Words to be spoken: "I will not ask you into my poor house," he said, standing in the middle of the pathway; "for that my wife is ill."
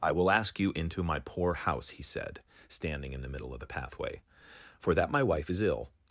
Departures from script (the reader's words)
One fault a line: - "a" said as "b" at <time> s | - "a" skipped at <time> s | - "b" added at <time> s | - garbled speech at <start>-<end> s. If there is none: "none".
- "not" skipped at 0.3 s